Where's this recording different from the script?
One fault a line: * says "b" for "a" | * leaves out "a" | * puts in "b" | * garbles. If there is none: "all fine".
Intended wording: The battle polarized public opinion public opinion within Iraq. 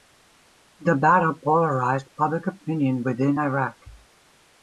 * leaves out "public opinion"